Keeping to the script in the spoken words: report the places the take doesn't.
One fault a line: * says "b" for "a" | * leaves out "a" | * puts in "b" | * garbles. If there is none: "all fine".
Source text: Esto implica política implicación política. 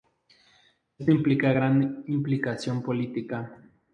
* says "gran" for "política"